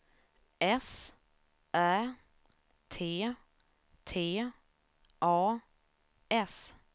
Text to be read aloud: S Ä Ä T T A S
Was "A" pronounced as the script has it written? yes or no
yes